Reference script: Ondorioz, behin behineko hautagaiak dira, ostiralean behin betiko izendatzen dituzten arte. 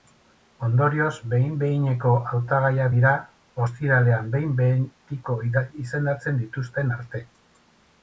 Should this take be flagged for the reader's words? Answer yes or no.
no